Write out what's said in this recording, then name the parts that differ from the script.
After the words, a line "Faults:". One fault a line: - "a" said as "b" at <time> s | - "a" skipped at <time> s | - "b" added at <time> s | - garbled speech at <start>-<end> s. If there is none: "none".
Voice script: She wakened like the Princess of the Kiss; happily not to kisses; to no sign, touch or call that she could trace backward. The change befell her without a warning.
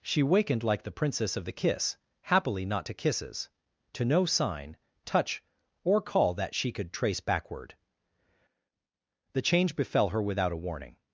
She wakened like the Princess of the Kiss; happily not to kisses; to no sign, touch or call that she could trace backward. The change befell her without a warning.
Faults:
none